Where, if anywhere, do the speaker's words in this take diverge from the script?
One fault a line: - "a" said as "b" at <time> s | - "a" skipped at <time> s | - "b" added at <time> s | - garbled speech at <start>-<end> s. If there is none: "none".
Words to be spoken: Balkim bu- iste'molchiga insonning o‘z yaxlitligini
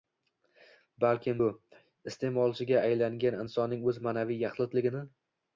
- "aylangan" added at 2.9 s
- "ma'naviy" added at 4.1 s